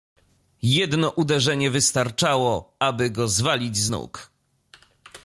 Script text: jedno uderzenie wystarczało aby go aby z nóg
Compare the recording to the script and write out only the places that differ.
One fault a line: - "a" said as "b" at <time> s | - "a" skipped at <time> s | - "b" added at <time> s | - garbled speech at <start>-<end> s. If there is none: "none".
- "aby" said as "zwalić" at 3.3 s